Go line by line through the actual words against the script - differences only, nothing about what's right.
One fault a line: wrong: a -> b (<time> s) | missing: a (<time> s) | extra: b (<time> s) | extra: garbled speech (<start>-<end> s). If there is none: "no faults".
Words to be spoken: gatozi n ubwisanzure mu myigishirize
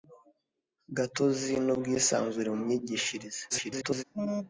extra: garbled speech (3.5-4.0 s)